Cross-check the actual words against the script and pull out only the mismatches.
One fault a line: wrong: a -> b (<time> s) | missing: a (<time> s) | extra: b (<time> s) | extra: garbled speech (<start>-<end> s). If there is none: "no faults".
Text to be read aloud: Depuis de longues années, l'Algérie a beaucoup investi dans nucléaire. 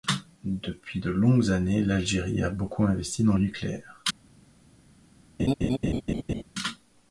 no faults